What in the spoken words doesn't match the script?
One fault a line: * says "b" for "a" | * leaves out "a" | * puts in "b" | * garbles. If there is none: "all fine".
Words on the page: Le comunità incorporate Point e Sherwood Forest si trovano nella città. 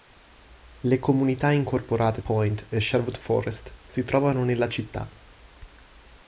all fine